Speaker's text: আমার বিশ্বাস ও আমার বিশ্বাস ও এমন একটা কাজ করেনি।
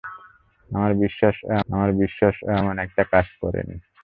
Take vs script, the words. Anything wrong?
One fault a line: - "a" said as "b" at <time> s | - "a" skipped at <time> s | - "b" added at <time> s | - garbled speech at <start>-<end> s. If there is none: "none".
none